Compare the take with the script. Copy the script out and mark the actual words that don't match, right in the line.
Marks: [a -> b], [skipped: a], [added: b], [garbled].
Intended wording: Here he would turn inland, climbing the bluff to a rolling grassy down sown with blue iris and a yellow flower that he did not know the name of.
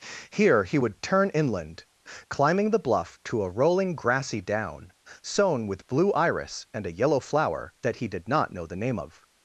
Here he would turn inland, climbing the bluff to a rolling grassy down sown with blue iris and a yellow flower that he did not know the name of.